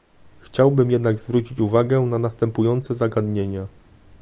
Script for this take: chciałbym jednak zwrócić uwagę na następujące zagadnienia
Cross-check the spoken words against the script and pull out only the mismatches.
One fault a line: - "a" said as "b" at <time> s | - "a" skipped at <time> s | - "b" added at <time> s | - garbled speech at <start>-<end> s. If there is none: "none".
none